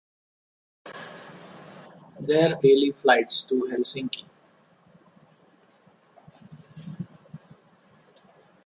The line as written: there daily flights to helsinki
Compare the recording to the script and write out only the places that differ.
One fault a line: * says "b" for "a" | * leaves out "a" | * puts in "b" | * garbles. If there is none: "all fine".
all fine